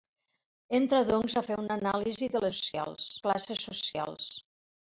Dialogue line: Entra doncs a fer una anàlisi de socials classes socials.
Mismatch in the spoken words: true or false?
false